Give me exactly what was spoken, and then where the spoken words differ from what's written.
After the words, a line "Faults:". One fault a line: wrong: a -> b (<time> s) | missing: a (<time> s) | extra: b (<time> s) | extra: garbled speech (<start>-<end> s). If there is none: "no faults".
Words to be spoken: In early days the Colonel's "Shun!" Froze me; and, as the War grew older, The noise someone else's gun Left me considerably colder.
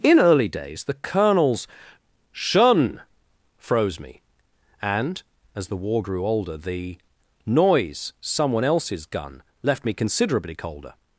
In early days the Colonel's "Shun!" Froze me; and, as the War grew older, The noise someone else's gun Left me considerably colder.
Faults:
no faults